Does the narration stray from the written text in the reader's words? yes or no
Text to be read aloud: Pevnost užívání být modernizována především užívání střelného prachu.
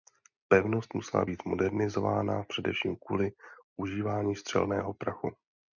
yes